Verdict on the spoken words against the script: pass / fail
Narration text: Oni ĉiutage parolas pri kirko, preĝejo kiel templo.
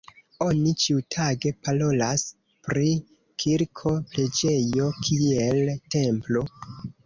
pass